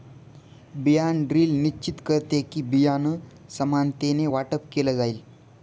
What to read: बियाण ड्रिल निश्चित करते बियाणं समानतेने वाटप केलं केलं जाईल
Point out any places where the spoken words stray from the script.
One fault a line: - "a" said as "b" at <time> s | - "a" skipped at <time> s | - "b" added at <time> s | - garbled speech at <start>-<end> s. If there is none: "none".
- "कि" added at 2.4 s
- "केलं" skipped at 5.0 s